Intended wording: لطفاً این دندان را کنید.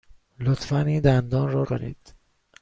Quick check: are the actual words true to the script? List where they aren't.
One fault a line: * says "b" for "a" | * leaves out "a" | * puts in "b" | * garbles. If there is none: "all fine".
all fine